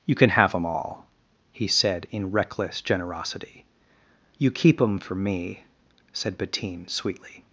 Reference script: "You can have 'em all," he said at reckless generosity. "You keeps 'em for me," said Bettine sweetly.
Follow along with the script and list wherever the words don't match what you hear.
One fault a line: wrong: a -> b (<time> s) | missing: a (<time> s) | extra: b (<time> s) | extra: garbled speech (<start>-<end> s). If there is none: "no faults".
wrong: at -> in (2.1 s)
wrong: keeps -> keep (4.5 s)